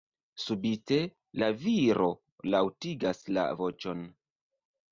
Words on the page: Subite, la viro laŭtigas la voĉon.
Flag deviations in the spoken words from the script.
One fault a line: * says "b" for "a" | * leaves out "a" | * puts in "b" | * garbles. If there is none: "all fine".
all fine